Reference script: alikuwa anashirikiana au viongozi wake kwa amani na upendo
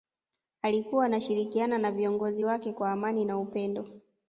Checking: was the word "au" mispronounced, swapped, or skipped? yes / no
yes